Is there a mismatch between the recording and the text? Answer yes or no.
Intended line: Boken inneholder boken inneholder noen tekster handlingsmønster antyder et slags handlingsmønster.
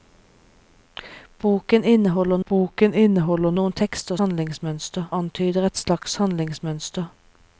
no